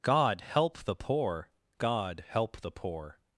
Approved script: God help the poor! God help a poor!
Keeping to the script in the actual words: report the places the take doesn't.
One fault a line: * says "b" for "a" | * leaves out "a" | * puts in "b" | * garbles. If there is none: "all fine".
* says "the" for "a"